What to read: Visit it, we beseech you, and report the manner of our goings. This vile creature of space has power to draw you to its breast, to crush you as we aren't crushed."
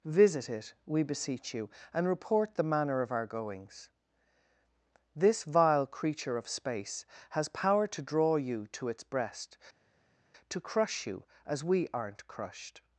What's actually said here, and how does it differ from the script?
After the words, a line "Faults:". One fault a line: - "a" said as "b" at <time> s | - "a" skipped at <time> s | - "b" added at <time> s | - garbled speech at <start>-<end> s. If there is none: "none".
Visit it, we beseech you, and report the manner of our goings. This vile creature of space has power to draw you to its breast, to crush you as we aren't crushed."
Faults:
none